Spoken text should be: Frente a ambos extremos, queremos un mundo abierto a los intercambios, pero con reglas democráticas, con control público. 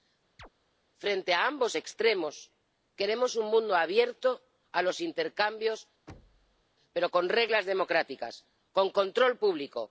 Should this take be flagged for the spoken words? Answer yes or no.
no